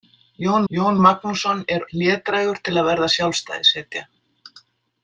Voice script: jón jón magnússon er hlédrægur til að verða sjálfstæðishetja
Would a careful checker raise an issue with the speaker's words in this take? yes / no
no